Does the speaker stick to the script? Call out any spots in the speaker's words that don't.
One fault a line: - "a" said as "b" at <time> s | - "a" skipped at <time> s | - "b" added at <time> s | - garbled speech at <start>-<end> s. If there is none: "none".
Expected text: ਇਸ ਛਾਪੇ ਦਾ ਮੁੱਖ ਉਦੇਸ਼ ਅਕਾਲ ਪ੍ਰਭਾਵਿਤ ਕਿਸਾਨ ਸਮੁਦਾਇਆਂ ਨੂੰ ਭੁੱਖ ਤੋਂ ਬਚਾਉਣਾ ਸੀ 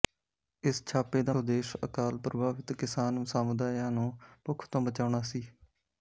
- "ਮੁੱਖ" skipped at 1.3 s